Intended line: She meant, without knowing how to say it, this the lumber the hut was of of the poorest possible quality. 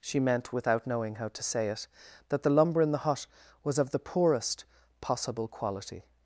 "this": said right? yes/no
no